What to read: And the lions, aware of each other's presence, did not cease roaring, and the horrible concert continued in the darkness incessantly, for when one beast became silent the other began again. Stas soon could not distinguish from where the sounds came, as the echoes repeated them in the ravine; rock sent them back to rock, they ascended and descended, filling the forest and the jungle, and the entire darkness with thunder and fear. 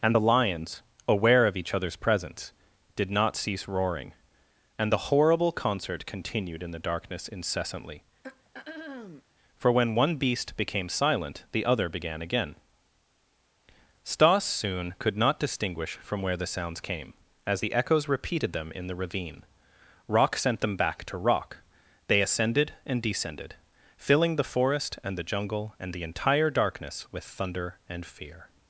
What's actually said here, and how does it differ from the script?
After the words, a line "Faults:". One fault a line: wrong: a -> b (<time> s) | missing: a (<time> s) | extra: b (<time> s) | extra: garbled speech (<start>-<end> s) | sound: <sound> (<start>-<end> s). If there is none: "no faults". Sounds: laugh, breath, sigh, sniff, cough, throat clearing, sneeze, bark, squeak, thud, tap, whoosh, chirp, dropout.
And the lions, aware of each other's presence, did not cease roaring, and the horrible concert continued in the darkness incessantly, for when one beast became silent the other began again. Stas soon could not distinguish from where the sounds came, as the echoes repeated them in the ravine; rock sent them back to rock, they ascended and descended, filling the forest and the jungle, and the entire darkness with thunder and fear.
Faults:
sound: throat clearing (8.2-9.2 s)